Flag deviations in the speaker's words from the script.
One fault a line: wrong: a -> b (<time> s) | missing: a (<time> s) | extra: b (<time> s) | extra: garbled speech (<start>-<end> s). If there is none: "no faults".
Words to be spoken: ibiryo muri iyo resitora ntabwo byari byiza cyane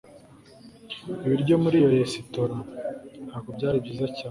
no faults